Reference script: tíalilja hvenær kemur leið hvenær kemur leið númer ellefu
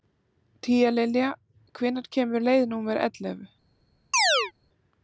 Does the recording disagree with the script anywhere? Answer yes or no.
yes